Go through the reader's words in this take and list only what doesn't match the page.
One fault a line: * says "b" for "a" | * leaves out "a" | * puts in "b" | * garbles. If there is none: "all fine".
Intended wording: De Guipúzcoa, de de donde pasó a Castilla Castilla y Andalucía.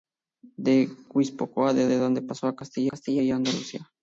all fine